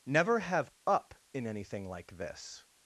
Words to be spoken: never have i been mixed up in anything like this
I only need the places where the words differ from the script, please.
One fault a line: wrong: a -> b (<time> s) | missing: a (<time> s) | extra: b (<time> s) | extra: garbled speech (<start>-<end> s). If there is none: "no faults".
missing: i been mixed (0.7 s)